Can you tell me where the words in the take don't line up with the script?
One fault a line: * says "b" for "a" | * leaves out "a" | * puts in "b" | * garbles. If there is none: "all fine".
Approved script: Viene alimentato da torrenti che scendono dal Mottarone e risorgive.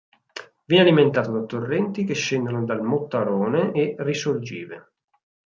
all fine